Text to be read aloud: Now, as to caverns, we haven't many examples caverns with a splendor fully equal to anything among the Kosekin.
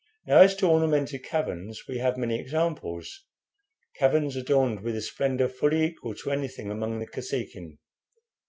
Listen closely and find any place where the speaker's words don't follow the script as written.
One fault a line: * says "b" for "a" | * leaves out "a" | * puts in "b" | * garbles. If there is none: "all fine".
* puts in "ornamented"
* says "have" for "haven't"
* puts in "adorned"